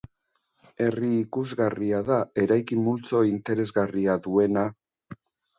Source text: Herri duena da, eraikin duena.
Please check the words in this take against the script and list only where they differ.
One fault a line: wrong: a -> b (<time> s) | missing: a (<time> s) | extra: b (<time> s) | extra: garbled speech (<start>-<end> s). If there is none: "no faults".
wrong: duena -> ikusgarria (1.2 s)
extra: multzo interesgarria (2.9 s)